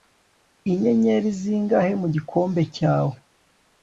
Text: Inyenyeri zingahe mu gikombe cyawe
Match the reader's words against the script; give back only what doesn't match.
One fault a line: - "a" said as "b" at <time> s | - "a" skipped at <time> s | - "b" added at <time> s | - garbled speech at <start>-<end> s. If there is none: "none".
none